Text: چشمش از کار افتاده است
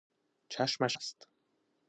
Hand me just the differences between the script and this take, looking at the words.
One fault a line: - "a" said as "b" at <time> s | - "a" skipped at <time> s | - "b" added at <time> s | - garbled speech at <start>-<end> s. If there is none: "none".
- "از کار افتاده" skipped at 1.0 s